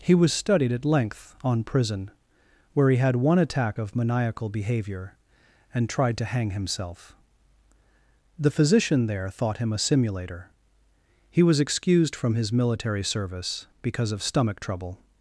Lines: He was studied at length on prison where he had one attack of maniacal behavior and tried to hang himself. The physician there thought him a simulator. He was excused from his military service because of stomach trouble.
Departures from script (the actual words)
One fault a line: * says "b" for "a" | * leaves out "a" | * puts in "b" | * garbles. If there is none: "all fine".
all fine